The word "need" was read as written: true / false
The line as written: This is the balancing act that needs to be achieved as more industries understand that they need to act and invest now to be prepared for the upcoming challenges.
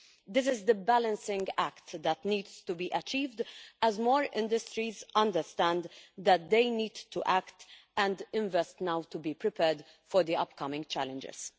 true